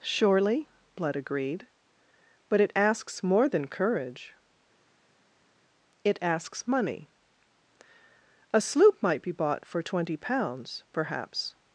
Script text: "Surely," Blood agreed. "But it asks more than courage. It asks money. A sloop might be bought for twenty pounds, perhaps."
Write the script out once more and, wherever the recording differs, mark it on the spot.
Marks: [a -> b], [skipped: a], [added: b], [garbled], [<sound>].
"Surely," Blood agreed. "But it asks more than courage. It asks money. A sloop might be bought for twenty pounds, perhaps."